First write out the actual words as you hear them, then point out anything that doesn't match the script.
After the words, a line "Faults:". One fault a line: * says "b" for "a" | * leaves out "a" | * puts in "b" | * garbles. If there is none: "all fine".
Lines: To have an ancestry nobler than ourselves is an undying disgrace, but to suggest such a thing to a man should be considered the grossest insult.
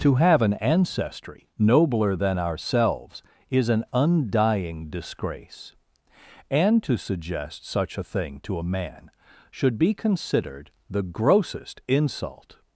To have an ancestry nobler than ourselves is an undying disgrace, and to suggest such a thing to a man should be considered the grossest insult.
Faults:
* says "and" for "but"